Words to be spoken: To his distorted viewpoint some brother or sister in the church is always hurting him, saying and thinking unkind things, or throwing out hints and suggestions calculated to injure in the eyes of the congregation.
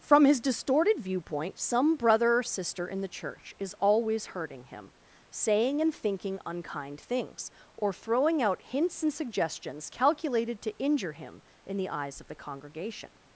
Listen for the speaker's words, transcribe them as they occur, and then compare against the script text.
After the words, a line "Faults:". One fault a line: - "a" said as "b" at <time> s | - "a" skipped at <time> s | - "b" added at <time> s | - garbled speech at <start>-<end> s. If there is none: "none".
From his distorted viewpoint some brother or sister in the church is always hurting him, saying and thinking unkind things, or throwing out hints and suggestions calculated to injure him in the eyes of the congregation.
Faults:
- "To" said as "From" at 0.0 s
- "him" added at 11.1 s